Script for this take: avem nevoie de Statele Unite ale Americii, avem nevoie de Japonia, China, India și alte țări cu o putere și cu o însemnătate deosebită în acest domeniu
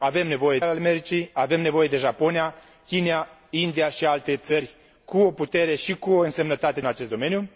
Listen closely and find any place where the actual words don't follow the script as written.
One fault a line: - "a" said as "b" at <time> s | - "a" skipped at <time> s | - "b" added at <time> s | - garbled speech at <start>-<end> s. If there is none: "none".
- "de Statele Unite" skipped at 0.6 s
- "deosebită" skipped at 6.8 s